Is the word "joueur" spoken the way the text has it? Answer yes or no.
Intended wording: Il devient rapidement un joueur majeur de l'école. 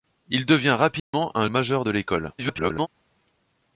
no